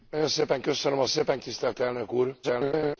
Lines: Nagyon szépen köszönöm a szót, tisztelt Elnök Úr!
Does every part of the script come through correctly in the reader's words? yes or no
no